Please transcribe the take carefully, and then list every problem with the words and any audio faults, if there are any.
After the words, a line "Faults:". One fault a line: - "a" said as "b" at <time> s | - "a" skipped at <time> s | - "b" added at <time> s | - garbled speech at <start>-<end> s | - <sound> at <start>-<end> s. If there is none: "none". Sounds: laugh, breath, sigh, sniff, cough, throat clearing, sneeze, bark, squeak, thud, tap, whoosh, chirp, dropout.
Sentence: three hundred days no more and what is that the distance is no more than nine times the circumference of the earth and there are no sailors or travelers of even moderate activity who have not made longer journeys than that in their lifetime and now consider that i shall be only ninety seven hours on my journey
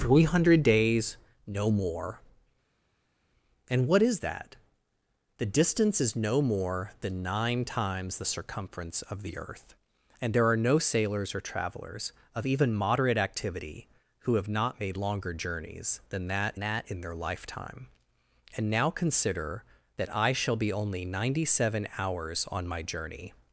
three hundred days no more and what is that the distance is no more than nine times the circumference of the earth and there are no sailors or travelers of even moderate activity who have not made longer journeys than that that in their lifetime and now consider that i shall be only ninety seven hours on my journey
Faults:
- "that" added at 16.6 s